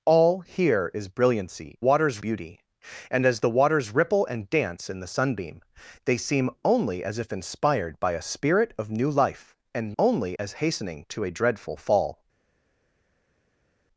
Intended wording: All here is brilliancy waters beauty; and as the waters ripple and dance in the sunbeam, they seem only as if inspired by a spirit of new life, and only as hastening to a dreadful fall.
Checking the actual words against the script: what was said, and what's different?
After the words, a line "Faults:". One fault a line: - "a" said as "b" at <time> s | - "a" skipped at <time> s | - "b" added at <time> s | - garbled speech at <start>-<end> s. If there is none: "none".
All here is brilliancy waters beauty; and as the waters ripple and dance in the sunbeam, they seem only as if inspired by a spirit of new life, and only as hastening to a dreadful fall.
Faults:
none